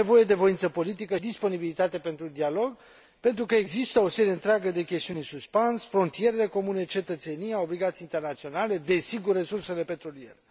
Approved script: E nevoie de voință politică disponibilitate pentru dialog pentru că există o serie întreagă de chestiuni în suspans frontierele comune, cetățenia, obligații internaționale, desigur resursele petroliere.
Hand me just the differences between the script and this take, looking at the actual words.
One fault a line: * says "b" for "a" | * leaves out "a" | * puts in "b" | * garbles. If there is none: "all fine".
all fine